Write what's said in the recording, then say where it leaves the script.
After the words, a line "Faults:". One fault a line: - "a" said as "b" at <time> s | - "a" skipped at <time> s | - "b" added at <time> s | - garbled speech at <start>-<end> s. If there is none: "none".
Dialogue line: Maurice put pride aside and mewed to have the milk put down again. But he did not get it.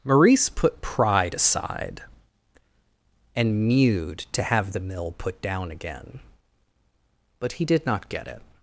Maurice put pride aside and mewed to have the mill put down again. But he did not get it.
Faults:
- "milk" said as "mill" at 4.8 s